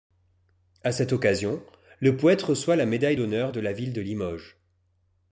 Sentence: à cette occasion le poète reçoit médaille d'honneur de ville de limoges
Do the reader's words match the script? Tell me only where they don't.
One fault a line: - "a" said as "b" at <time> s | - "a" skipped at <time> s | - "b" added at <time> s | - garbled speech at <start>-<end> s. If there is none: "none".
- "la" added at 2.8 s
- "la" added at 3.6 s